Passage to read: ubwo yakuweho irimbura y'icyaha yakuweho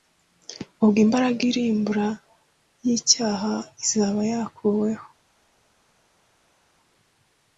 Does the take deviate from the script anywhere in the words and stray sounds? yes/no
yes